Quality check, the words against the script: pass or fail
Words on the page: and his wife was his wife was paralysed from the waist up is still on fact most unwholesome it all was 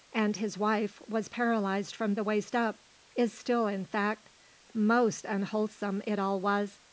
fail